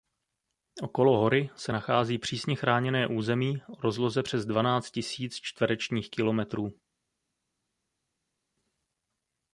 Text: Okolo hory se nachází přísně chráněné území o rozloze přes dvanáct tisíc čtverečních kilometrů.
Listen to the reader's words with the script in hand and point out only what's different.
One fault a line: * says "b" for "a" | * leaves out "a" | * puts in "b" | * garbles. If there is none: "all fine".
all fine